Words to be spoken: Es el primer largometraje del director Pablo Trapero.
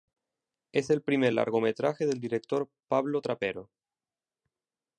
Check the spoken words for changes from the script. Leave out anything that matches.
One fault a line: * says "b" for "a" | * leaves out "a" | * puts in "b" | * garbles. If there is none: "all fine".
all fine